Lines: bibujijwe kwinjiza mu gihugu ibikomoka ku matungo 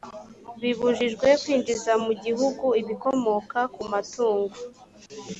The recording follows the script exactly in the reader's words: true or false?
true